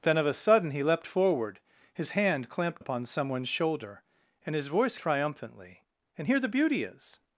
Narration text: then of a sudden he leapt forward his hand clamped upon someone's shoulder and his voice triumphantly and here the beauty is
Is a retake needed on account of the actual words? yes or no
no